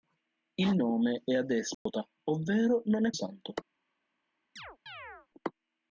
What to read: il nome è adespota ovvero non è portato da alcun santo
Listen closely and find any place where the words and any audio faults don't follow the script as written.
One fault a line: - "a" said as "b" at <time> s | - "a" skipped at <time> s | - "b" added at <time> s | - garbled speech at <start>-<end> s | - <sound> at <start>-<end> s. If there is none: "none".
- dropout at 1.7-1.9 s
- "portato da alcun" skipped at 3.1 s
- chirp at 4.6-5.3 s